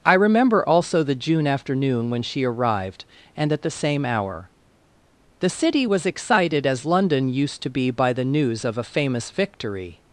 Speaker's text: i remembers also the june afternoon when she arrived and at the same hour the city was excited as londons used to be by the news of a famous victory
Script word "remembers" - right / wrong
wrong